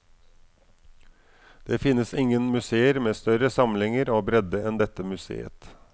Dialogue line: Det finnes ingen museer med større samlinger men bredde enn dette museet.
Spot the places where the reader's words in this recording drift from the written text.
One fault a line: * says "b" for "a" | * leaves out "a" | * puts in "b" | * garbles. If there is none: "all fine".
* says "og" for "men"